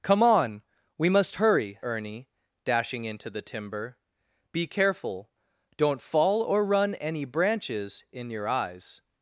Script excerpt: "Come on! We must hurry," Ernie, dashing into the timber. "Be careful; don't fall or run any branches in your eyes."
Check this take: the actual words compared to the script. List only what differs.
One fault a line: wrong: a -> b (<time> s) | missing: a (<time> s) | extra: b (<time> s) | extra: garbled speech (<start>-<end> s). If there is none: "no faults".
no faults